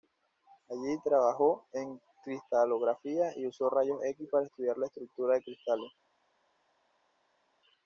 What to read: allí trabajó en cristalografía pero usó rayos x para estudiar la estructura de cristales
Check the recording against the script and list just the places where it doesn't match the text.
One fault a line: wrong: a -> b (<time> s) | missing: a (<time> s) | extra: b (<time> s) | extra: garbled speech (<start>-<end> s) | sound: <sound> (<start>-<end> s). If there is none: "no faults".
wrong: pero -> y (3.4 s)